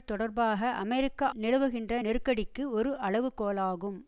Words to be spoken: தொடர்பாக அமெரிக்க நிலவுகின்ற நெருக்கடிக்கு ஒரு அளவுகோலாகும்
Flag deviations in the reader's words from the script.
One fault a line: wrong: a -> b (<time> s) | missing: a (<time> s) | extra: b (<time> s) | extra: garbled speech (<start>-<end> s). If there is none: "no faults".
no faults